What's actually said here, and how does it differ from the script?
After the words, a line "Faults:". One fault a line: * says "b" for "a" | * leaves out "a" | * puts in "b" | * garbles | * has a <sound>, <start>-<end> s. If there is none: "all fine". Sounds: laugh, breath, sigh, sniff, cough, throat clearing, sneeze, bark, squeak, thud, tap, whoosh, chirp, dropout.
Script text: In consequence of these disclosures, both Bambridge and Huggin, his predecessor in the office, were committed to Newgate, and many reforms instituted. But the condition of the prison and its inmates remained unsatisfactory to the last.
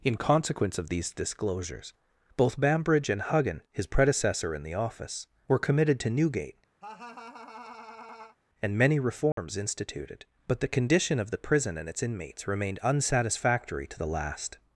In consequence of these disclosures, both Bambridge and Huggin, his predecessor in the office, were committed to Newgate, and many reforms instituted. But the condition of the prison and its inmates remained unsatisfactory to the last.
Faults:
* has a laugh, 6.8-8.4 s
* has a dropout, 9.3-9.4 s